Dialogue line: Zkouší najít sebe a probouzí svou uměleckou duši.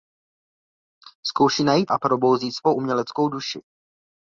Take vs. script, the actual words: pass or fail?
fail